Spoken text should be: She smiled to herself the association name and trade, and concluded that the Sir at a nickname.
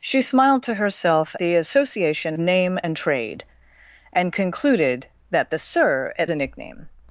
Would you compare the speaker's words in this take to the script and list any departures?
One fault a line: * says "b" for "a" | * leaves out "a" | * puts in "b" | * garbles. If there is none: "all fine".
all fine